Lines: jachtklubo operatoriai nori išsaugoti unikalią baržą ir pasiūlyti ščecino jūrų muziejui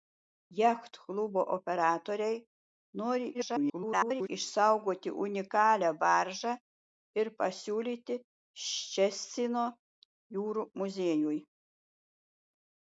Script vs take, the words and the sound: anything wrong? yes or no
yes